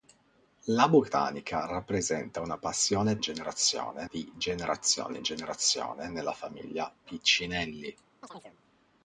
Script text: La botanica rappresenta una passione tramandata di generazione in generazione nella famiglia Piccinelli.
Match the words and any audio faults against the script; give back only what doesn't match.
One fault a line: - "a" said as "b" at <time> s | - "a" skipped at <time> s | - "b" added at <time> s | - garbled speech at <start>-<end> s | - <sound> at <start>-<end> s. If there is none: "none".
- "tramandata" said as "generazione" at 3.2 s
- chirp at 8.2-8.6 s